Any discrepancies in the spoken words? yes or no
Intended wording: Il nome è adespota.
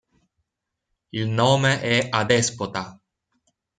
no